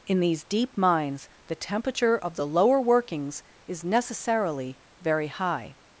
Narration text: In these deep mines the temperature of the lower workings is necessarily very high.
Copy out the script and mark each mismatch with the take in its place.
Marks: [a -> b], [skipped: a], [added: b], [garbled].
In these deep mines the temperature of the lower workings is necessarily very high.